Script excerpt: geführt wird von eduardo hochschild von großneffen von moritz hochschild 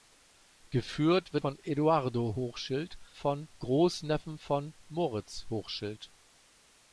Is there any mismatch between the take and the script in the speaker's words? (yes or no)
no